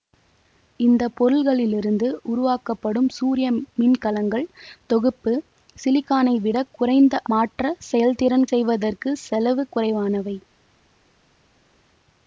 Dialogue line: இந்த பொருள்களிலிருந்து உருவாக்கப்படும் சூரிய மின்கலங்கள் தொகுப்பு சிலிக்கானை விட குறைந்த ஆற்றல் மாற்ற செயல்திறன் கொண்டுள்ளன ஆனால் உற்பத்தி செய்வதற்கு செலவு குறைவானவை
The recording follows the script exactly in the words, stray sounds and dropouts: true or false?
false